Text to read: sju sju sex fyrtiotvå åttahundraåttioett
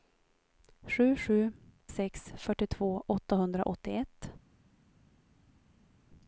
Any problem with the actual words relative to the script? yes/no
no